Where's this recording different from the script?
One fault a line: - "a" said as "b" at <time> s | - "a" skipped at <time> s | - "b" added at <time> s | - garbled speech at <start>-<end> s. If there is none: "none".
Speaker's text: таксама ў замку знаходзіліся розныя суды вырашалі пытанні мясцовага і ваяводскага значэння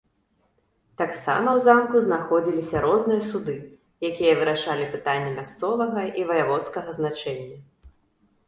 - "якія" added at 4.1 s